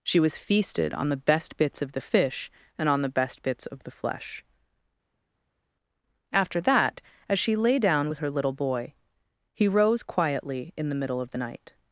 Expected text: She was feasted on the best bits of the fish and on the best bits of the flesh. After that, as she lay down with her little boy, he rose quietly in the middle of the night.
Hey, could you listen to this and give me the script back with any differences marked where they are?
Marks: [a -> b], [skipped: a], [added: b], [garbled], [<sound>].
She was feasted on the best bits of the fish and on the best bits of the flesh. After that, as she lay down with her little boy, he rose quietly in the middle of the night.